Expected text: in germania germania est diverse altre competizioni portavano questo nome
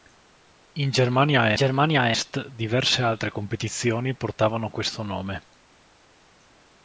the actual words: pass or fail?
pass